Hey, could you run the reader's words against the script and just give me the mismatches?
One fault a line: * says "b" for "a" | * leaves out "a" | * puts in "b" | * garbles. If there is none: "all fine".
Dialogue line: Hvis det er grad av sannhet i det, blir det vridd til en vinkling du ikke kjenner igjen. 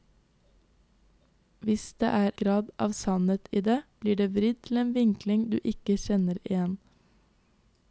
all fine